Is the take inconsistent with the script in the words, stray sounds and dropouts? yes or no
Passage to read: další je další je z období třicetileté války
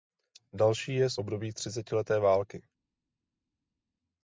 yes